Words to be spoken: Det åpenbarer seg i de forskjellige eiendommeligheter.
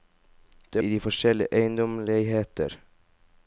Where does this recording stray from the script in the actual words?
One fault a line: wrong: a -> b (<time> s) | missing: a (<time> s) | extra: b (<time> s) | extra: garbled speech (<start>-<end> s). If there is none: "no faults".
missing: åpenbarer seg (0.8 s)